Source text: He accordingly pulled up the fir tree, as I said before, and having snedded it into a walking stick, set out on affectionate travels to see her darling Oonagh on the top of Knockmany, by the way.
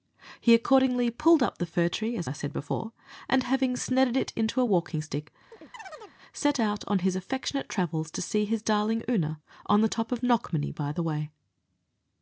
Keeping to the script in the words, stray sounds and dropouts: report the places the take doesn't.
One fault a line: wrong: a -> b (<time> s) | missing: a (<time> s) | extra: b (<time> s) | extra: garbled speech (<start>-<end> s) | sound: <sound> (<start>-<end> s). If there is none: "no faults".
sound: chirp (5.5-6.2 s)
extra: his (7.0 s)
wrong: her -> his (8.4 s)